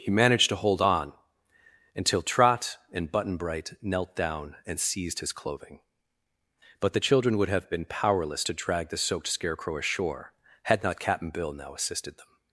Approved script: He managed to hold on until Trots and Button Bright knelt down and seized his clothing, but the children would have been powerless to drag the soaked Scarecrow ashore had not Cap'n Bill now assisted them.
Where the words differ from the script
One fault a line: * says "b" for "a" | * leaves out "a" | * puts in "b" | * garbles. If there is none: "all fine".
* says "Trot" for "Trots"